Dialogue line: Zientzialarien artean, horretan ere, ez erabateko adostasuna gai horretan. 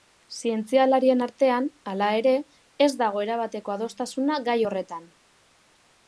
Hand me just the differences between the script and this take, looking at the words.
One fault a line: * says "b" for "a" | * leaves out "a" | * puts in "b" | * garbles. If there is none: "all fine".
* says "hala" for "horretan"
* puts in "dago"